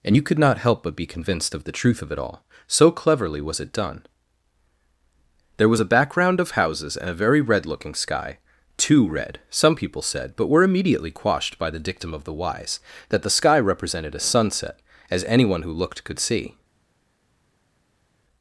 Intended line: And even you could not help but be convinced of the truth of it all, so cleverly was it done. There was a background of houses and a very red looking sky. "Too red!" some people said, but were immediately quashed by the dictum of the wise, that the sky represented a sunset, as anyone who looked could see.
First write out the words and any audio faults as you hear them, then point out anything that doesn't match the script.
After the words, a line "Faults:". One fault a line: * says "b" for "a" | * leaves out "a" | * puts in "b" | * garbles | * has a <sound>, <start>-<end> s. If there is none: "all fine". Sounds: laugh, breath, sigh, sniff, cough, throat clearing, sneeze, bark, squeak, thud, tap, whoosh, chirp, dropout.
And you could not help but be convinced of the truth of it all, so cleverly was it done. There was a background of houses and a very red looking sky. "Too red!" some people said, but were immediately quashed by the dictum of the wise, that the sky represented a sunset, as anyone who looked could see.
Faults:
* leaves out "even"